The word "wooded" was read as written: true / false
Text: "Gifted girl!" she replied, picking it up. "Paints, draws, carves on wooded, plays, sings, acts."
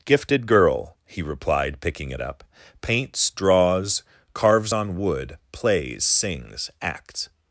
false